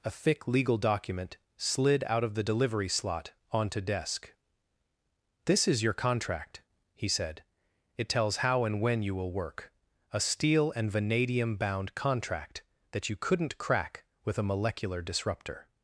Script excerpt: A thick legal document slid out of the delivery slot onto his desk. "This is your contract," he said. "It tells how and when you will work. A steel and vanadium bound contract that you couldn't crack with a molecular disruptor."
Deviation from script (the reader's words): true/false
true